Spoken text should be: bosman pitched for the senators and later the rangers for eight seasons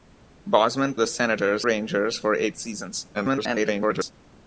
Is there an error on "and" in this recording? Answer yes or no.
yes